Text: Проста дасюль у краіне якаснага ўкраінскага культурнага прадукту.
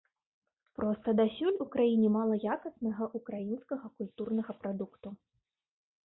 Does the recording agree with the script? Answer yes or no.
no